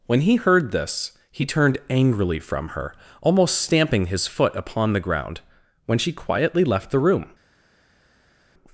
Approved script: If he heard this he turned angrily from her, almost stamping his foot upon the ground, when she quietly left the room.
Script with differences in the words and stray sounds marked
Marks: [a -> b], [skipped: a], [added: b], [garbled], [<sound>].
[If -> When] he heard this he turned angrily from her, almost stamping his foot upon the ground, when she quietly left the room.